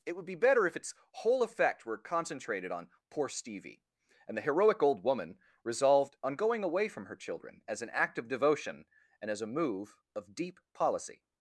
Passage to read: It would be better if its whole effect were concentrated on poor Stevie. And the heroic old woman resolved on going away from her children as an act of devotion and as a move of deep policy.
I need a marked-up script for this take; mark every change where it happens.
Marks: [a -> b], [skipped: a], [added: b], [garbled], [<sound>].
It would be better if its whole effect were concentrated on poor Stevie. And the heroic old woman resolved on going away from her children as an act of devotion and as a move of deep policy.